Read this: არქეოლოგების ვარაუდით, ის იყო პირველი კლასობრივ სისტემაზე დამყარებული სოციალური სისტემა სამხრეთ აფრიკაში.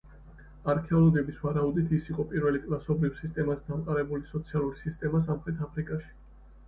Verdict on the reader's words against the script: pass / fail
pass